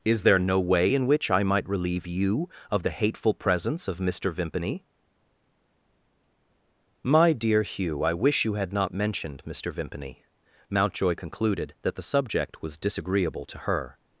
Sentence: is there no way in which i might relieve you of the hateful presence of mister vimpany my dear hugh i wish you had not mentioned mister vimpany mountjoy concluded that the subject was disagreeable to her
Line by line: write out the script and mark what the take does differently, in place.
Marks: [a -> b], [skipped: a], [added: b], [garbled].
is there no way in which i might relieve you of the hateful presence of mister vimpany my dear hugh i wish you had not mentioned mister vimpany mountjoy concluded that the subject was disagreeable to her